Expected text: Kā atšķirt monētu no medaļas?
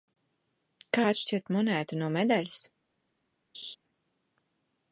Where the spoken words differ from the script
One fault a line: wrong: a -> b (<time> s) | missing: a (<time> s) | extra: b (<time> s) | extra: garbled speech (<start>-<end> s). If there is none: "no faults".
no faults